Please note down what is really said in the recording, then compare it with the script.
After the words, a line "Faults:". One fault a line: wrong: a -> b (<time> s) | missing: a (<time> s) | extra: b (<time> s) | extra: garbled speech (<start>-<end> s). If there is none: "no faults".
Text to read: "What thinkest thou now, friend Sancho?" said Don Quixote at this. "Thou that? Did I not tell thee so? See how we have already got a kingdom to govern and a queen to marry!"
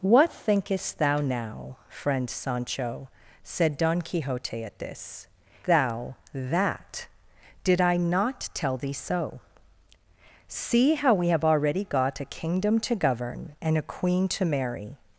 "What thinkest thou now, friend Sancho?" said Don Quixote at this. "Thou that? Did I not tell thee so? See how we have already got a kingdom to govern and a queen to marry!"
Faults:
no faults